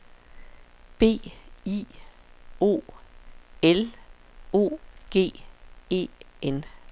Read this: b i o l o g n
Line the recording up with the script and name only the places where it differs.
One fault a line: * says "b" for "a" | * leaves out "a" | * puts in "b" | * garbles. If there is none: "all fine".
* puts in "e"